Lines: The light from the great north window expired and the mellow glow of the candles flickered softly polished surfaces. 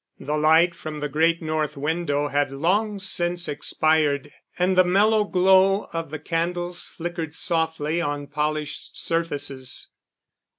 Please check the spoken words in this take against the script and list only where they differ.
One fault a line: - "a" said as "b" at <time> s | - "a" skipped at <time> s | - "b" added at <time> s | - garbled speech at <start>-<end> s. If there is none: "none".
- "had long since" added at 2.3 s
- "on" added at 8.0 s